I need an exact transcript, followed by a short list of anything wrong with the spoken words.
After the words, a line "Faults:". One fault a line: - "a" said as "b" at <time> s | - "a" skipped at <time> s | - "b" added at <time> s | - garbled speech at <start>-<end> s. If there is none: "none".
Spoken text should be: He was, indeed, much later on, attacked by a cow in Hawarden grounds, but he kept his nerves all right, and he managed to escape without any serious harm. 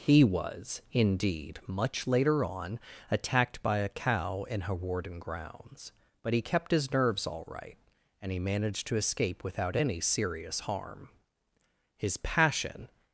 He was, indeed, much later on, attacked by a cow in Hawarden grounds, but he kept his nerves all right, and he managed to escape without any serious harm. His passion
Faults:
- "His passion" added at 12.0 s